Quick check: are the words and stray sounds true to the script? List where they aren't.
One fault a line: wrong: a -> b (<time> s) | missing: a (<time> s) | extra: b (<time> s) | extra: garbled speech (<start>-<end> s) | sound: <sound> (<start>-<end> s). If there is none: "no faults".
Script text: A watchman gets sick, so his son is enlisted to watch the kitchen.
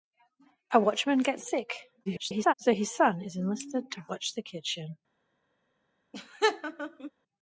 extra: garbled speech (2.1-2.5 s)
sound: laugh (6.1-7.1 s)